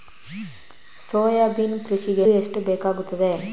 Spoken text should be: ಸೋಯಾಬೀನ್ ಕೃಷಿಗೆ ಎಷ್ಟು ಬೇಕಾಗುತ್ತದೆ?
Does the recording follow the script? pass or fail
pass